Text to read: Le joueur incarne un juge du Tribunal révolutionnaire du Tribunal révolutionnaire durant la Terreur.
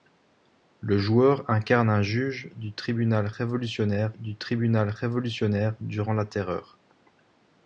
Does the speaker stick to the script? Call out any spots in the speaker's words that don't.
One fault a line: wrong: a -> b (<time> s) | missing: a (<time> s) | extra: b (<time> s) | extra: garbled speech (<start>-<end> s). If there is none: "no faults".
no faults